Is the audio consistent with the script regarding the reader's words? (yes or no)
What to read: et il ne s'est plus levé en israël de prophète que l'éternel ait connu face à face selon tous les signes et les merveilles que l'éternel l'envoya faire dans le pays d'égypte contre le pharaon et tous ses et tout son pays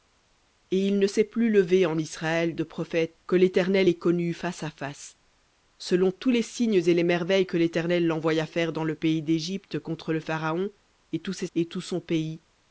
yes